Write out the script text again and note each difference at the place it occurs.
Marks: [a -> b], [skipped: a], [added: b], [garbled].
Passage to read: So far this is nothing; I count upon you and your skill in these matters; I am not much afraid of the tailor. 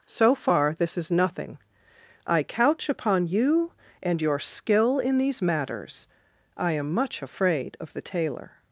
So far this is nothing; I [count -> couch] upon you and your skill in these matters; I am [skipped: not] much afraid of the tailor.